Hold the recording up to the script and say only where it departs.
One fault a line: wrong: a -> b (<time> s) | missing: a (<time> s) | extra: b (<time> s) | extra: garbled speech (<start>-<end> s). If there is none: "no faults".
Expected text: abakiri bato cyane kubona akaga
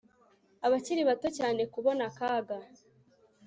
no faults